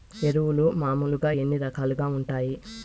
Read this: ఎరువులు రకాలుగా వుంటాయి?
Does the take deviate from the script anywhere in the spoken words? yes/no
yes